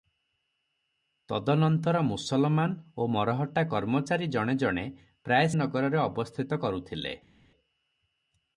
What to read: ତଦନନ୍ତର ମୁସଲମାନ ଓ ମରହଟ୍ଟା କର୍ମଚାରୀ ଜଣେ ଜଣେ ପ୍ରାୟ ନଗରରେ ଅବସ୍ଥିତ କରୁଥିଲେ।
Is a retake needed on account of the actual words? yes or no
no